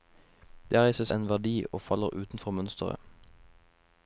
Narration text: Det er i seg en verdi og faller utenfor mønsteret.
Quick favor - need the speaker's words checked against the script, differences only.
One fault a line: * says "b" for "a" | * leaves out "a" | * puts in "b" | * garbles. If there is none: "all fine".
all fine